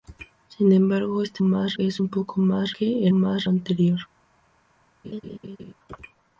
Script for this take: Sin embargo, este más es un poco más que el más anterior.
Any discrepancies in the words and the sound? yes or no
yes